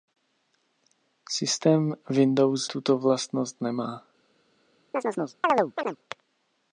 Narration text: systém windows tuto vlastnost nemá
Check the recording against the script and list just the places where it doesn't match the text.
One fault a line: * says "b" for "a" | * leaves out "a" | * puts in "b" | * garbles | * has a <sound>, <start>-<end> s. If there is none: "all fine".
* has a chirp, 4.9-6.0 s